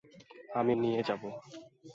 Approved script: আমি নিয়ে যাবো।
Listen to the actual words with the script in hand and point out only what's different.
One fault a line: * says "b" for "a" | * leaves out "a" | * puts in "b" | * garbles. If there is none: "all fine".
all fine